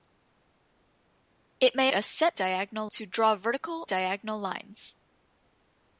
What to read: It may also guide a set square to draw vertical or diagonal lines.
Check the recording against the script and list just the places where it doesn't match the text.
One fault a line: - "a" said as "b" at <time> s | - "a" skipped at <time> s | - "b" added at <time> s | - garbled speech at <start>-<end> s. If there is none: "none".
- "also guide" skipped at 1.9 s
- "square" said as "diagonal" at 2.3 s
- "or" skipped at 3.8 s